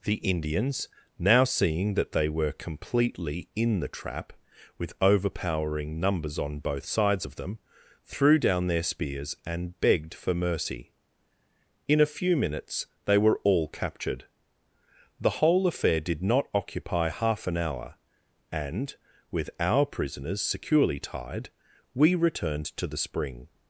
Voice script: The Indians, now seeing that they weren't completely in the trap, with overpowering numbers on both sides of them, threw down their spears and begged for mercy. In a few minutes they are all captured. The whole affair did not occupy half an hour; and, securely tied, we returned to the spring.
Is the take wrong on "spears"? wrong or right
right